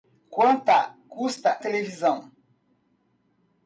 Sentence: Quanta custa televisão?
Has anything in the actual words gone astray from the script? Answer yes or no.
no